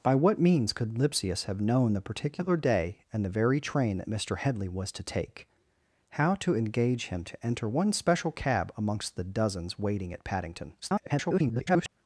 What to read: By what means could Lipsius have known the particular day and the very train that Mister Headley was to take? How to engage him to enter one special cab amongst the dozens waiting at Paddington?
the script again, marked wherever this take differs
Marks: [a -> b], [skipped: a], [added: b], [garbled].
By what means could Lipsius have known the particular day and the very train that Mister Headley was to take? How to engage him to enter one special cab amongst the dozens waiting at Paddington? [garbled]